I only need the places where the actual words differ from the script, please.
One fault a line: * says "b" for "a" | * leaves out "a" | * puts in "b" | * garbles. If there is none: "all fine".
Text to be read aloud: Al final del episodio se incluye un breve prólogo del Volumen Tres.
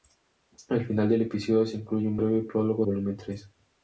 * leaves out "del"